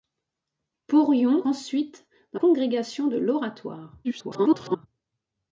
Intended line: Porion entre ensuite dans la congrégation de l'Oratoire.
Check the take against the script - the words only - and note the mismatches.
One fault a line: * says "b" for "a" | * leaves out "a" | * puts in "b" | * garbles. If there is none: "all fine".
* leaves out "entre"
* leaves out "la"
* garbles